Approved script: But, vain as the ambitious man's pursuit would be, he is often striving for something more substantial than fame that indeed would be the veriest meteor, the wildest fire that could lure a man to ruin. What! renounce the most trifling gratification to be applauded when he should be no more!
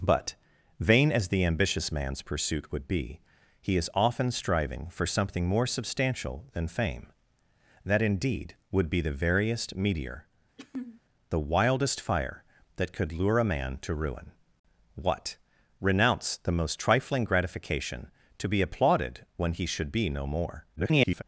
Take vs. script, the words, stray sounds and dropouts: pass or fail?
fail